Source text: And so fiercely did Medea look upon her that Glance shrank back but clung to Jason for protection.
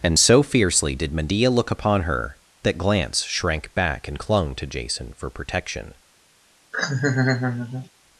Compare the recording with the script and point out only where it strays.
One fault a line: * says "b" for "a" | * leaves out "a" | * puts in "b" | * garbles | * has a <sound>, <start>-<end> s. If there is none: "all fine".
* says "and" for "but"
* has a laugh, 6.7-7.9 s